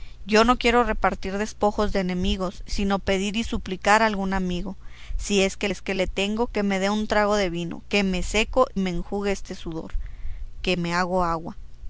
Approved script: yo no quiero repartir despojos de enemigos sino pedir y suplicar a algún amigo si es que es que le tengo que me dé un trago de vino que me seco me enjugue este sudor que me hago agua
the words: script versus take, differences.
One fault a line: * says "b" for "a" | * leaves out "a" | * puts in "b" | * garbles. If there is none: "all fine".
all fine